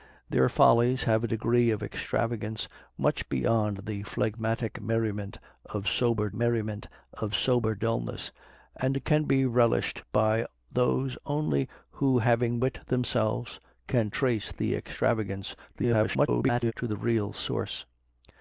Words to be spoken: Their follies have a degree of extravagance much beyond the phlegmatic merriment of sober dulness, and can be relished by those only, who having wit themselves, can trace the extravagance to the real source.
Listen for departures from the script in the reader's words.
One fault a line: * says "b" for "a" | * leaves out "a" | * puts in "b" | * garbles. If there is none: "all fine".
* puts in "merriment of sober"
* garbles